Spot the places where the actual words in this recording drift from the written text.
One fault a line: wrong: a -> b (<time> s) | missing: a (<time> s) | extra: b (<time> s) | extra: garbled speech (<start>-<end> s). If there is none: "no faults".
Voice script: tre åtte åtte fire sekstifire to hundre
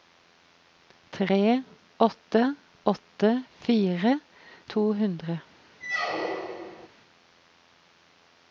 missing: sekstifire (4.1 s)